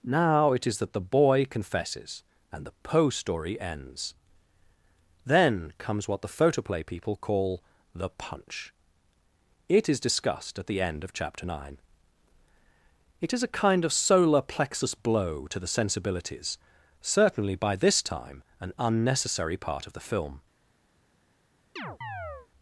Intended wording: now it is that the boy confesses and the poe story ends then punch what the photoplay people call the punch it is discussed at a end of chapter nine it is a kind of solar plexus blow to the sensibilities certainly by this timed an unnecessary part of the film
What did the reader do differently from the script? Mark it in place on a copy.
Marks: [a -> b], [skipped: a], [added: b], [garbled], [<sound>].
now it is that the boy confesses and the poe story ends then [punch -> comes] what the photoplay people call the punch it is discussed at [a -> the] end of chapter nine it is a kind of solar plexus blow to the sensibilities certainly by this [timed -> time] an unnecessary part of the film [chirp]